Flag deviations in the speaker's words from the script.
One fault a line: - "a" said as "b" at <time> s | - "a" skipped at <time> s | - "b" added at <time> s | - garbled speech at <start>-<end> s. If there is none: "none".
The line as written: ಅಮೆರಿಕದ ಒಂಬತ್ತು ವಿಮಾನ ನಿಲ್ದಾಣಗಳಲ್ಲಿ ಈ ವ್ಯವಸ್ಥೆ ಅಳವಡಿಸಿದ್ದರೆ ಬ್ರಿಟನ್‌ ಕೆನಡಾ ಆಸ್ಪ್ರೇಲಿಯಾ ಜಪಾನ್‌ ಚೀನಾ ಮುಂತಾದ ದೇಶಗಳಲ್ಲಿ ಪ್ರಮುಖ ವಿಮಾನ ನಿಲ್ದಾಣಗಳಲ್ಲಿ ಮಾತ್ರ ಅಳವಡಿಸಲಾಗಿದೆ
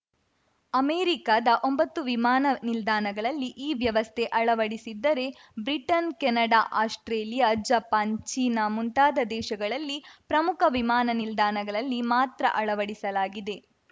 none